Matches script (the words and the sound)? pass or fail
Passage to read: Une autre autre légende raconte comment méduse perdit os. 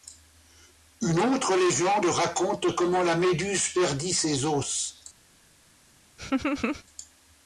fail